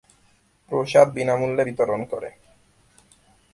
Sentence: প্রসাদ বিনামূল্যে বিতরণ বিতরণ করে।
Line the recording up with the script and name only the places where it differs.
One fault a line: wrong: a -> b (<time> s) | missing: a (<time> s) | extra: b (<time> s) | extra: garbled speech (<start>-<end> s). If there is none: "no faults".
missing: বিতরণ (2.0 s)